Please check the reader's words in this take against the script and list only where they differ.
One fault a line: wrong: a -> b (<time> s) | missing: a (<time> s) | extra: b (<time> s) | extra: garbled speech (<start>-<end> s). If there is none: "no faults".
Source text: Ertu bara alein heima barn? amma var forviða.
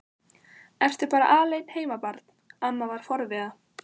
no faults